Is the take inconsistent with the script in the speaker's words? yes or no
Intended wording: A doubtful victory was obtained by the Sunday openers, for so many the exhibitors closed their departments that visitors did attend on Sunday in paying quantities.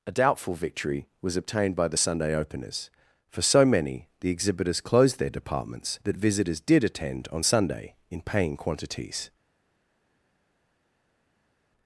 no